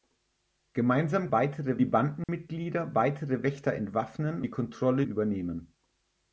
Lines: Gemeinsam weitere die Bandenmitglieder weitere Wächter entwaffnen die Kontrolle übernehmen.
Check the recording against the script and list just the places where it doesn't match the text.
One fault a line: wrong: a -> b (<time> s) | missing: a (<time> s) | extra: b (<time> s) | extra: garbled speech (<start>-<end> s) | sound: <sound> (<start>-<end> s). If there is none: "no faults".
sound: dropout (2.2-2.3 s)